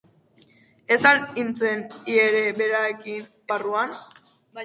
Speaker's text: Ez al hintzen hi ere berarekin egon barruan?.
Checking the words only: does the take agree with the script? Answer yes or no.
no